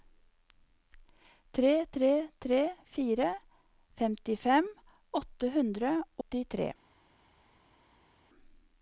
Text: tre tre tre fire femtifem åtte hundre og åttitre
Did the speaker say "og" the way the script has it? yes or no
no